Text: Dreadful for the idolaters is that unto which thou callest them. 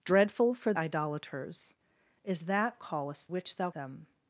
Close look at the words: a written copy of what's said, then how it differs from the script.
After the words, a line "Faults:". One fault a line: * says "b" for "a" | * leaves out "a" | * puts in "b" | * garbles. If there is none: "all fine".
Dreadful for idolaters is that callest which thou them.
Faults:
* leaves out "the"
* says "callest" for "unto"
* leaves out "callest"